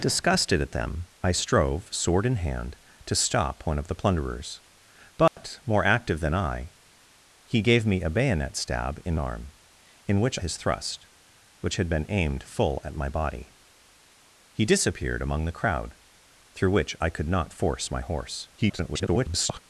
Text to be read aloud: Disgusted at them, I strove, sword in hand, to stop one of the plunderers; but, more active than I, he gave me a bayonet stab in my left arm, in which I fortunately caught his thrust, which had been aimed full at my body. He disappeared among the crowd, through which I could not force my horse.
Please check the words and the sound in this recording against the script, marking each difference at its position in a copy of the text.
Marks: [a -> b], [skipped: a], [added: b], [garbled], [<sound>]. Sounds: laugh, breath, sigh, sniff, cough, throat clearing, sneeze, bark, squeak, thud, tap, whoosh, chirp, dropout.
Disgusted at them, I strove, sword in hand, to stop one of the plunderers; but, [dropout] more active than I, he gave me a bayonet stab in [skipped: my left] arm, in which [skipped: I fortunately caught] his thrust, which had been aimed full at my body. He disappeared among the crowd, through which I could not force my horse. [garbled]